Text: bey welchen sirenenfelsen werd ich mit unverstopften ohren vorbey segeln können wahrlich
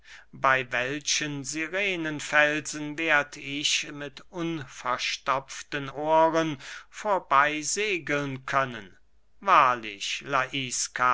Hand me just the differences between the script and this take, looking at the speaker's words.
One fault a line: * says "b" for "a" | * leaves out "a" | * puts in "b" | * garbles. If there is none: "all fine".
all fine